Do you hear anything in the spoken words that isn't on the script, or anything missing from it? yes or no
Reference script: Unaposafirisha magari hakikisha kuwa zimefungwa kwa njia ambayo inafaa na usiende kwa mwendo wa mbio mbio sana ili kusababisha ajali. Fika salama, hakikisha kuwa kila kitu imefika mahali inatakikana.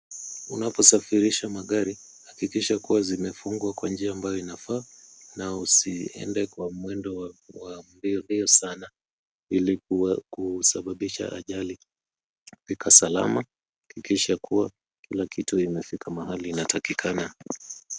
no